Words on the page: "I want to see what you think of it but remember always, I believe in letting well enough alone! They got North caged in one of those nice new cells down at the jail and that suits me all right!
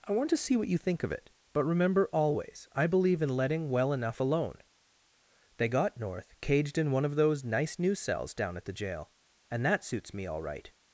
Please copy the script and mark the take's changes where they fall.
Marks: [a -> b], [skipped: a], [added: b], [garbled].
"I want to see what you think of it but remember always, I believe in letting well enough alone! They got North caged in one of those nice new cells down at the jail and that suits me all right!